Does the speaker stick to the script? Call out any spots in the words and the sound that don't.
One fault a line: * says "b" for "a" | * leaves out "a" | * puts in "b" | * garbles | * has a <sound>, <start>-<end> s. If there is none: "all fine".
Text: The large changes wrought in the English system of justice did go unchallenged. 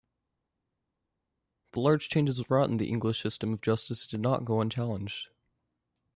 * puts in "not"